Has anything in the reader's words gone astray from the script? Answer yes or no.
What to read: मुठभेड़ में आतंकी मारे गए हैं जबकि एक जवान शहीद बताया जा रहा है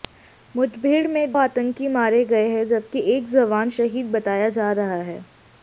no